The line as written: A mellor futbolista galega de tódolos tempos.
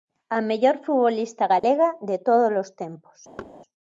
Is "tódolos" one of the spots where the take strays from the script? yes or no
no